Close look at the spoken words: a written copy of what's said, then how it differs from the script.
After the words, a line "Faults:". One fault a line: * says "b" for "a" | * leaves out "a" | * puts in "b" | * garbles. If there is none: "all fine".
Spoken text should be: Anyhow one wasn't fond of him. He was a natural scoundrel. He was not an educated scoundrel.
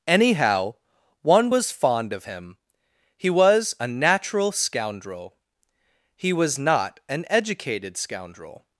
Anyhow one was fond of him. He was a natural scoundrel. He was not an educated scoundrel.
Faults:
* says "was" for "wasn't"